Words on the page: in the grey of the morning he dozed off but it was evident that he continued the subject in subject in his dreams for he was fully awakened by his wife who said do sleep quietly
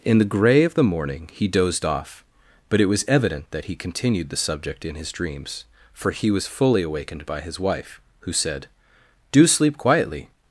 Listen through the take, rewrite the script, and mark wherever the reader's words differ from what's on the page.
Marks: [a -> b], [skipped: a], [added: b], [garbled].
in the grey of the morning he dozed off but it was evident that he continued the subject in [skipped: subject in] his dreams for he was fully awakened by his wife who said do sleep quietly